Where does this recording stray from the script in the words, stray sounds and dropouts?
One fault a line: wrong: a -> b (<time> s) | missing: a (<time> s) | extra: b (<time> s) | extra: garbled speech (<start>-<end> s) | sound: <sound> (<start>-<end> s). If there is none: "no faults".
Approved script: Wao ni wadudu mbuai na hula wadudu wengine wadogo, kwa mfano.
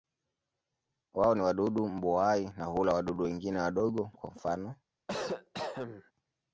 sound: cough (5.1-6.1 s)